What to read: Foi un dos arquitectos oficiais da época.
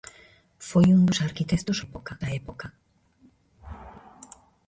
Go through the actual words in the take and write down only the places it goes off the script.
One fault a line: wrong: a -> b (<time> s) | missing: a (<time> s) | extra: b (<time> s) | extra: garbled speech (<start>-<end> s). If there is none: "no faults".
wrong: oficiais -> época (1.9 s)